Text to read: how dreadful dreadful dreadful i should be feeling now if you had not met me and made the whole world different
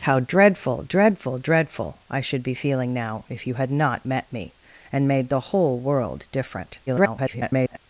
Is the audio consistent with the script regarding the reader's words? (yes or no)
no